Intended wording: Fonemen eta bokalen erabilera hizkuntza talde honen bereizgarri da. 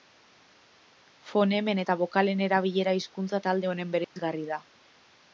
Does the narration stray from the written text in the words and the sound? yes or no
yes